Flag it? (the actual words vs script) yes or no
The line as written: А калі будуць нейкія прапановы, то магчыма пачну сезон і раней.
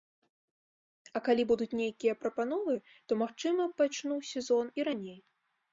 no